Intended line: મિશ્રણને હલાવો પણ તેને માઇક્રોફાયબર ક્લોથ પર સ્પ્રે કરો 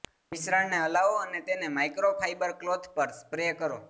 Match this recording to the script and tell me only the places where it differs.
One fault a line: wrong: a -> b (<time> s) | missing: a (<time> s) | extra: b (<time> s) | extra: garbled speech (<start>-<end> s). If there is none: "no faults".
wrong: પણ -> અને (1.2 s)